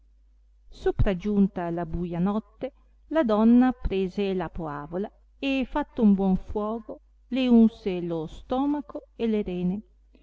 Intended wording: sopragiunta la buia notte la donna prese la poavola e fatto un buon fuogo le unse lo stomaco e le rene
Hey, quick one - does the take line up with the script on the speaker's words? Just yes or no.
yes